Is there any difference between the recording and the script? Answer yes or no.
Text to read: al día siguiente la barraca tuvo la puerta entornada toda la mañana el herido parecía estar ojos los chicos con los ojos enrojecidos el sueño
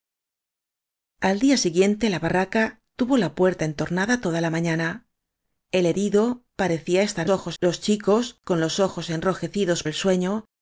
no